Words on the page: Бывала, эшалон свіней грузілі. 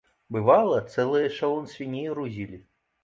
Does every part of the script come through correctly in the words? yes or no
no